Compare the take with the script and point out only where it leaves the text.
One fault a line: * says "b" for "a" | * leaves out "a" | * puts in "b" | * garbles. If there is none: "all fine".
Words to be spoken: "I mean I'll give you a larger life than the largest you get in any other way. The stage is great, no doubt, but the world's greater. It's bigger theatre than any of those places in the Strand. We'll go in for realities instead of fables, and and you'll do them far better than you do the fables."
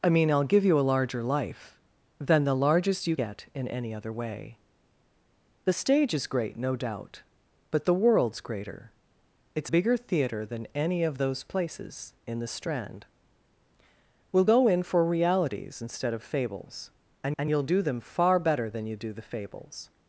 all fine